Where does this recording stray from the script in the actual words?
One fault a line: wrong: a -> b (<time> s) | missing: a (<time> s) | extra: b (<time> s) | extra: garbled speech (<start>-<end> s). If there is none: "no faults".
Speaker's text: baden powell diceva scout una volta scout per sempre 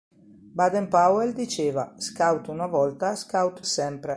missing: per (3.6 s)